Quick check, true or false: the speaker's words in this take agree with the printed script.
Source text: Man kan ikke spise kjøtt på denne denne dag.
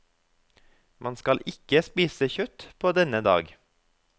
false